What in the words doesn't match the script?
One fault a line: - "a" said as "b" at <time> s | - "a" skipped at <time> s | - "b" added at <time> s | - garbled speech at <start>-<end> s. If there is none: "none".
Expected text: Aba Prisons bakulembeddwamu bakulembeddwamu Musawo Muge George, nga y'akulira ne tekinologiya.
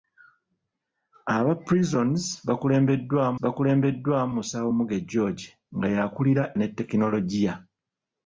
none